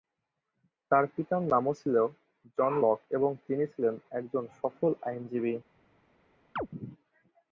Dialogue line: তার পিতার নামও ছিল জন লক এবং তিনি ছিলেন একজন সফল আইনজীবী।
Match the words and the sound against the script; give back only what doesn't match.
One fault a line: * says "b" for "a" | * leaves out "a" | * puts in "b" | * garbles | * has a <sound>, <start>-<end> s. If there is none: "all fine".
* has a chirp, 6.6-6.7 s